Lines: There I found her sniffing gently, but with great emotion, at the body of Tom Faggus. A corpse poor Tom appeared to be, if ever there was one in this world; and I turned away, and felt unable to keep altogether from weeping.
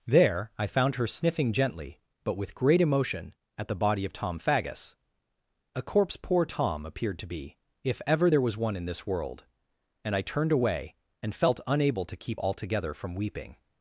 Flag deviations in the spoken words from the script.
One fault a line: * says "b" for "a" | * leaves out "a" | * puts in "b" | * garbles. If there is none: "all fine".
all fine